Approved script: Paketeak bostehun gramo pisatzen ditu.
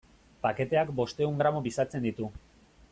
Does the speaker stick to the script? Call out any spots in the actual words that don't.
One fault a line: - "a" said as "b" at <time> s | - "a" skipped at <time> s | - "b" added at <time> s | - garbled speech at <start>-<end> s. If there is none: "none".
none